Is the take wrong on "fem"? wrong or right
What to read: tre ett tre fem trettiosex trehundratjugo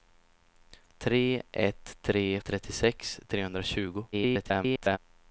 wrong